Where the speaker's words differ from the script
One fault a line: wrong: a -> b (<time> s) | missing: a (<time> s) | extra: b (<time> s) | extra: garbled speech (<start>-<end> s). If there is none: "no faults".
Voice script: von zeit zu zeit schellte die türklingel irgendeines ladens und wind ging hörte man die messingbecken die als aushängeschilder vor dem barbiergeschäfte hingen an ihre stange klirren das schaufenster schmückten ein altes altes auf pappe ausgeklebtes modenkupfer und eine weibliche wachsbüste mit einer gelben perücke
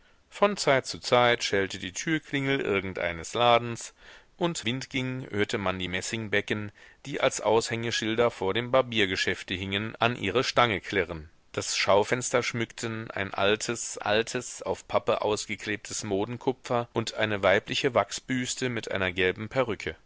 no faults